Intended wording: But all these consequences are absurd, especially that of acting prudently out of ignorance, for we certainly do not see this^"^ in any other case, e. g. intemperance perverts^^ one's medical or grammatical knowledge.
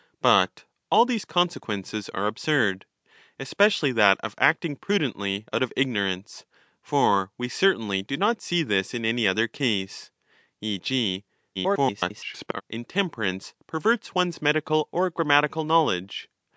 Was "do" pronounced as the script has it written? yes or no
yes